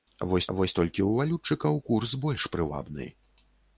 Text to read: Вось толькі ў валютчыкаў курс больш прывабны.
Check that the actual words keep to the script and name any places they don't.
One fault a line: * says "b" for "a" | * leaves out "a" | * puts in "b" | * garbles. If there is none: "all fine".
* puts in "вось"